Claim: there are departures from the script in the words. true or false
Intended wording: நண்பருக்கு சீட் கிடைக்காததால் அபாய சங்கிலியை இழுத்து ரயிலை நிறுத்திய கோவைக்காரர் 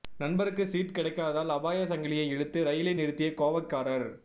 false